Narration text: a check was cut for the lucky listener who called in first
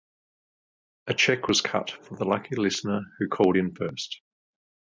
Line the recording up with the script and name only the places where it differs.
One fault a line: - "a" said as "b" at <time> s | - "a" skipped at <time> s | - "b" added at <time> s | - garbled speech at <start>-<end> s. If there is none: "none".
none